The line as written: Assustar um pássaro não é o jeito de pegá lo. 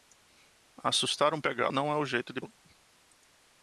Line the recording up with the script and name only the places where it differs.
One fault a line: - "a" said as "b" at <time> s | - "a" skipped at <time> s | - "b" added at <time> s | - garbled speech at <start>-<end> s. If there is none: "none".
- "pássaro" said as "pegá" at 1.4 s
- "pegá" skipped at 2.4 s